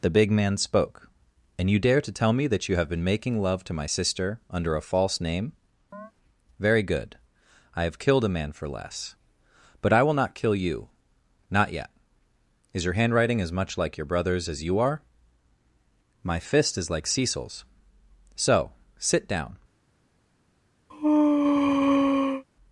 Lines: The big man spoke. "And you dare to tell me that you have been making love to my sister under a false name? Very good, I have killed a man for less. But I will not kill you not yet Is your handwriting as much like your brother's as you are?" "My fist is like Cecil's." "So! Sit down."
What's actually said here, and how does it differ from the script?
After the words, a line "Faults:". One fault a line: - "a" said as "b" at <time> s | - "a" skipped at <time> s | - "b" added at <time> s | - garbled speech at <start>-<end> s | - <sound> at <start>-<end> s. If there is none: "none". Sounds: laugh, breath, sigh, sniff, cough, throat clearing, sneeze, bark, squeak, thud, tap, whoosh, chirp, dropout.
The big man spoke. "And you dare to tell me that you have been making love to my sister under a false name? Very good, I have killed a man for less. But I will not kill you not yet Is your handwriting as much like your brother's as you are?" "My fist is like Cecil's." "So! Sit down."
Faults:
- chirp at 5.9-6.1 s
- sneeze at 20.9-22.4 s